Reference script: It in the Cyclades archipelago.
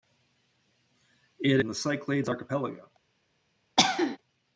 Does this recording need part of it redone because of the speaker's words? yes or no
no